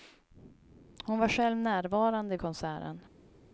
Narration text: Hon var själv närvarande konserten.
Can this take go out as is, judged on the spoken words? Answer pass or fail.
pass